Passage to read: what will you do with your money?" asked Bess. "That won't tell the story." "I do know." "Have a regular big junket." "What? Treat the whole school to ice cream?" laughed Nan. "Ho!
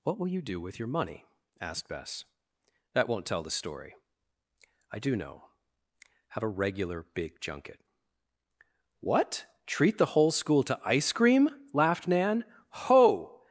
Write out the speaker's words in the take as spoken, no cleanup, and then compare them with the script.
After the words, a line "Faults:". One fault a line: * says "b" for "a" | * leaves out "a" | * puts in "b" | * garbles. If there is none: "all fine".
what will you do with your money?" asked Bess. "That won't tell the story." "I do know." "Have a regular big junket." "What? Treat the whole school to ice cream?" laughed Nan. "Ho!
Faults:
all fine